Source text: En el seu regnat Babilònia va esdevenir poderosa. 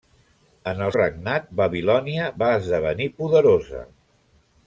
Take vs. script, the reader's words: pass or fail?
fail